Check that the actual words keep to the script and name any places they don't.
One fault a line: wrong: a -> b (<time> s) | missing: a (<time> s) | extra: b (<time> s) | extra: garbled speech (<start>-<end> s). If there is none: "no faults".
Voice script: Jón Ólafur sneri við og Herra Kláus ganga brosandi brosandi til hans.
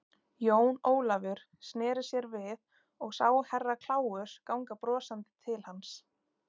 extra: sér (2.1 s)
extra: sá (3.1 s)
missing: brosandi (5.3 s)